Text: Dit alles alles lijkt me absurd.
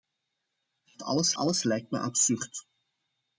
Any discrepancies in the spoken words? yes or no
no